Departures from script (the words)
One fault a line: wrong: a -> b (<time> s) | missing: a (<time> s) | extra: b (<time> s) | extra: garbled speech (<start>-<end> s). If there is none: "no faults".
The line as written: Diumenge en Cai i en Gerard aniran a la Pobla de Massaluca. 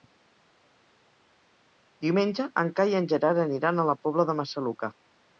no faults